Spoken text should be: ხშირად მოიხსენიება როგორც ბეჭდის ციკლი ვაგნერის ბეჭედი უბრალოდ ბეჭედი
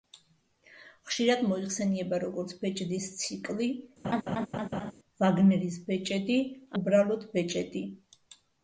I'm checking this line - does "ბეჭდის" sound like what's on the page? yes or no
yes